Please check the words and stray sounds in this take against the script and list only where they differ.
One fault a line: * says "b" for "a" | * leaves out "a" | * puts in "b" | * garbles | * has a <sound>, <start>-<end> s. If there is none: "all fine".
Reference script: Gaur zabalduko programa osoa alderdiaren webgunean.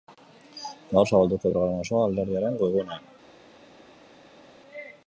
all fine